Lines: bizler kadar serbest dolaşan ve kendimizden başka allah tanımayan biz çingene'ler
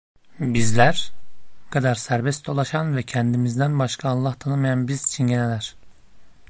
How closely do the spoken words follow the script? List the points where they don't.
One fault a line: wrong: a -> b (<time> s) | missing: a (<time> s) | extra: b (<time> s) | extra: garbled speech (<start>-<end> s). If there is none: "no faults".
no faults